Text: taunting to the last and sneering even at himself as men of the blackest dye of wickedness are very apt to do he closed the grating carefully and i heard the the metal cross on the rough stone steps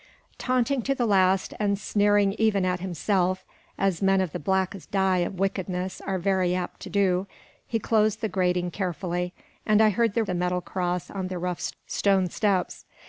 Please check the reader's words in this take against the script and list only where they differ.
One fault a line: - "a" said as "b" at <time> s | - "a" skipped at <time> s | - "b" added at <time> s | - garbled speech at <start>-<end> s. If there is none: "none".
none